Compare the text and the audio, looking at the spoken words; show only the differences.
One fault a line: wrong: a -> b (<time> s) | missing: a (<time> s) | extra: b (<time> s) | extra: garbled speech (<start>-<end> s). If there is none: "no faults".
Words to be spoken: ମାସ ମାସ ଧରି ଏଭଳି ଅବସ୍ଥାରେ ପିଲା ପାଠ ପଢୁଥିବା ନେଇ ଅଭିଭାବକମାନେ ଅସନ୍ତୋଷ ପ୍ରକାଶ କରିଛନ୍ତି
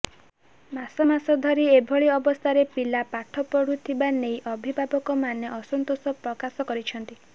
no faults